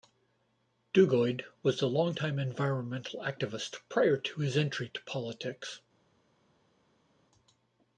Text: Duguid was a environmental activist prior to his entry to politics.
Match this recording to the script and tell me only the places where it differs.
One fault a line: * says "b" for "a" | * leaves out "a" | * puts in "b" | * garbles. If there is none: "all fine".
* puts in "long time"